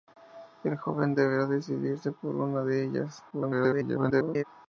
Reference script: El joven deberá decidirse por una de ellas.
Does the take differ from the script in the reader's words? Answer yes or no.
yes